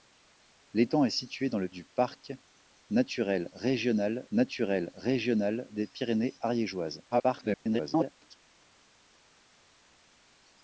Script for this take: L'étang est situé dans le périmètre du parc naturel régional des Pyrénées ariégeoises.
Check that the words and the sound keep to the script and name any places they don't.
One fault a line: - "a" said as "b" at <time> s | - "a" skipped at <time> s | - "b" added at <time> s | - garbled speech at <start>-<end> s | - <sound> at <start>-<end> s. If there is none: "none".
- "périmètre" skipped at 1.7 s
- "naturel régional" added at 4.3 s
- garbled speech at 7.1-8.4 s